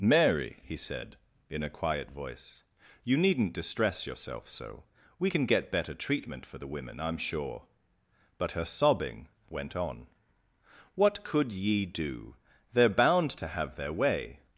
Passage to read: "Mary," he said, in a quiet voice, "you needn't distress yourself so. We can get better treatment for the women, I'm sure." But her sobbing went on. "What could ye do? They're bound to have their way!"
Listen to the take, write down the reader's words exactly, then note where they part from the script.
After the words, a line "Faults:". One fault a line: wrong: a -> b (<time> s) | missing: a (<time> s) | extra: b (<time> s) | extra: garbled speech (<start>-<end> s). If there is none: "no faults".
"Mary," he said, in a quiet voice, "you needn't distress yourself so. We can get better treatment for the women, I'm sure." But her sobbing went on. "What could ye do? They're bound to have their way!"
Faults:
no faults